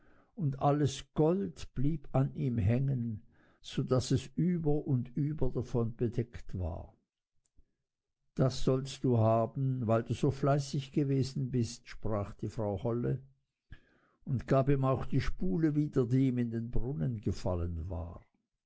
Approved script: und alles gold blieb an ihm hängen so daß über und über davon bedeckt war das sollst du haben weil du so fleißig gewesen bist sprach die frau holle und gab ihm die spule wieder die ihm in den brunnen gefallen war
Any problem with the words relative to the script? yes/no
yes